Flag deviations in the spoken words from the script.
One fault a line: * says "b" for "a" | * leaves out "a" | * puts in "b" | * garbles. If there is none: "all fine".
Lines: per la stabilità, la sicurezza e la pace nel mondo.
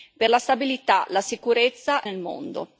* leaves out "e la pace"